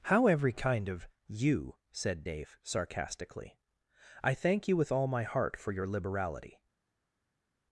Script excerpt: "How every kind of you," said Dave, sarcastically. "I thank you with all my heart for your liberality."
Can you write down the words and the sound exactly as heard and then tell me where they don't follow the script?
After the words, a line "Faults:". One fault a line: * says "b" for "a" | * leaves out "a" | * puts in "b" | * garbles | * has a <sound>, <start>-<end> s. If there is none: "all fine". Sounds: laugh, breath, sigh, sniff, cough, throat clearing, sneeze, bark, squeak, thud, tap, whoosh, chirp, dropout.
"How every kind of you," said Dave, sarcastically. "I thank you with all my heart for your liberality."
Faults:
all fine